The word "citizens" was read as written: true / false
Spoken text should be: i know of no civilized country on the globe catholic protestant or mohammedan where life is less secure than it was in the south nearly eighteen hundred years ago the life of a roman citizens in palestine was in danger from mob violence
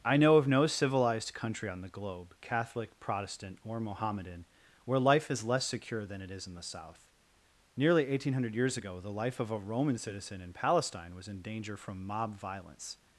false